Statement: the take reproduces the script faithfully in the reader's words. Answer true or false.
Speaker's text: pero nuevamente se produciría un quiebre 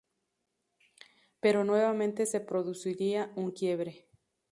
true